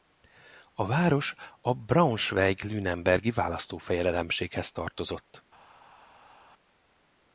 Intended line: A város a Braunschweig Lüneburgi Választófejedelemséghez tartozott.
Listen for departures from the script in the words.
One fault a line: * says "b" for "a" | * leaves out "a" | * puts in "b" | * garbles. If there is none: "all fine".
all fine